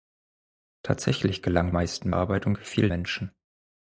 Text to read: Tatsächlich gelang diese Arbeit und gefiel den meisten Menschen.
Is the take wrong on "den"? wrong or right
wrong